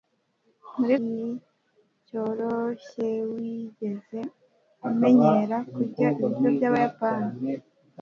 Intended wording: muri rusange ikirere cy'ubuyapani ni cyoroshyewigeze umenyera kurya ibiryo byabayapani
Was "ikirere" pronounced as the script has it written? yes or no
no